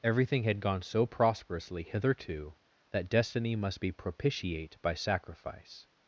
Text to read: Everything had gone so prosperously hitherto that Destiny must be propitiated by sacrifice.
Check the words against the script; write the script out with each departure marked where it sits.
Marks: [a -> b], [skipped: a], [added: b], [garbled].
Everything had gone so prosperously hitherto that Destiny must be [propitiated -> propitiate] by sacrifice.